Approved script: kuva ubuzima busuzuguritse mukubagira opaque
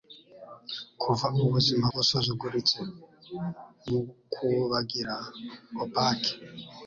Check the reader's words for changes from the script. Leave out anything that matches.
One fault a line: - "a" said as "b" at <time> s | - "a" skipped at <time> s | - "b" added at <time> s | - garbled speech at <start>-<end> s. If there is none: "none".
none